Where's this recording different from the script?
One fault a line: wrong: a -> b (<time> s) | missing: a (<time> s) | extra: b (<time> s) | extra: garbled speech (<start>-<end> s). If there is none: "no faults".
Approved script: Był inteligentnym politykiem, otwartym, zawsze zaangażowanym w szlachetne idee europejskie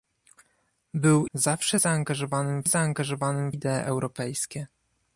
missing: inteligentnym politykiem otwartym (1.3 s)
wrong: szlachetne -> zaangażowanym (2.7 s)